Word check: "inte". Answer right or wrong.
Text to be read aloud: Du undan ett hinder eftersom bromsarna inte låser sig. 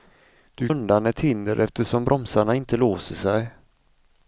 right